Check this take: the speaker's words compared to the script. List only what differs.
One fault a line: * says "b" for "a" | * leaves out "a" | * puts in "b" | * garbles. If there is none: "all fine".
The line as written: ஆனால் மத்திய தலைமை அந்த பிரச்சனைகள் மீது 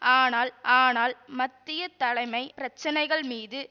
* puts in "ஆனால்"
* leaves out "அந்த"